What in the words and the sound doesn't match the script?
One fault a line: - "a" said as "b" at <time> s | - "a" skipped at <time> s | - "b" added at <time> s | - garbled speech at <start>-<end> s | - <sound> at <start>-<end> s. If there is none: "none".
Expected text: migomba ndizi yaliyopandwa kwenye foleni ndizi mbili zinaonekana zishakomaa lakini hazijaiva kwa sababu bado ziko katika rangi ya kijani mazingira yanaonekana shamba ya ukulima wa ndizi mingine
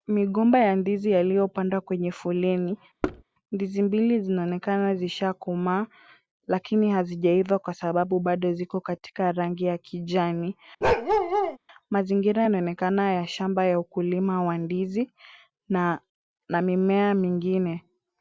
- "ya" added at 0.6 s
- thud at 3.0-3.2 s
- bark at 10.8-11.6 s
- "ya" added at 13.1 s
- "na mimea" added at 15.7 s